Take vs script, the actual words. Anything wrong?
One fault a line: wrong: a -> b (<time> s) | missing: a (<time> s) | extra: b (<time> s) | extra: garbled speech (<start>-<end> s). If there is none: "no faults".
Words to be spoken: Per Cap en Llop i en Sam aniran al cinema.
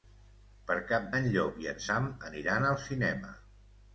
no faults